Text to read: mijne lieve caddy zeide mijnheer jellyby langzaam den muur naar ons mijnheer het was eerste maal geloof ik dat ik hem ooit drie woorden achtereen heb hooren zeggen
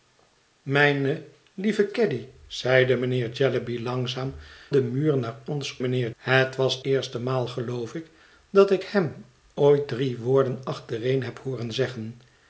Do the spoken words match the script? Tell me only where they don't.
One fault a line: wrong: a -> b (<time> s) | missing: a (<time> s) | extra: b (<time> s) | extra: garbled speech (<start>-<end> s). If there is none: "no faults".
no faults